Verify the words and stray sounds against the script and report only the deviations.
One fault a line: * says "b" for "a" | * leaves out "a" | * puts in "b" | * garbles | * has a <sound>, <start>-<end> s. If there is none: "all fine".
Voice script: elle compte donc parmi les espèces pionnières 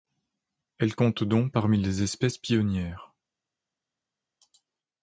all fine